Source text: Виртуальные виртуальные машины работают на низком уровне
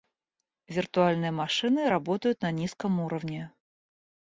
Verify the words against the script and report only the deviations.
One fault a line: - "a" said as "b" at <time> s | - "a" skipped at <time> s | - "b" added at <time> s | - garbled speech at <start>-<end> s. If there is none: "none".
- "виртуальные" skipped at 1.3 s